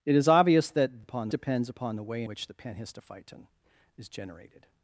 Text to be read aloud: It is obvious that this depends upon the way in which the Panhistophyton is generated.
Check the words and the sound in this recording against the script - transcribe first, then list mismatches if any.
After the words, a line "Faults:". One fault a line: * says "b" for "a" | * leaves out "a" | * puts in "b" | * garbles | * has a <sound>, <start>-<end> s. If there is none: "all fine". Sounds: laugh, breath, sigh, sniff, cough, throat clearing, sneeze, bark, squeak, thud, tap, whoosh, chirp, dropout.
It is obvious that upon depends upon the way which the Panhistophyton is generated.
Faults:
* says "upon" for "this"
* leaves out "in"